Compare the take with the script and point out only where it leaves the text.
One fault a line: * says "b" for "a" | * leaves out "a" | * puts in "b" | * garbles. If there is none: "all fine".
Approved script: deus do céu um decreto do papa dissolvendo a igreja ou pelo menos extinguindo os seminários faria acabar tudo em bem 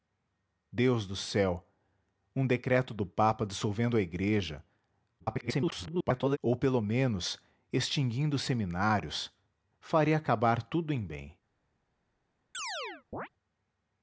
* garbles